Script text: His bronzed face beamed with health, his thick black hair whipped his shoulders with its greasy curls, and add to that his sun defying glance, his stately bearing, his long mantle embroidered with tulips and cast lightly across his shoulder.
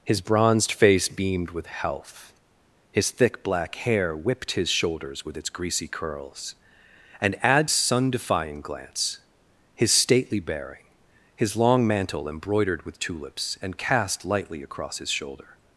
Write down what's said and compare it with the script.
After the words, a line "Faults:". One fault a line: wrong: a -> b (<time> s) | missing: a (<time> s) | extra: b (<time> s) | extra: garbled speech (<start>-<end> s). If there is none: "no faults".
His bronzed face beamed with health, his thick black hair whipped his shoulders with its greasy curls, and add sun defying glance, his stately bearing, his long mantle embroidered with tulips and cast lightly across his shoulder.
Faults:
missing: to that his (7.7 s)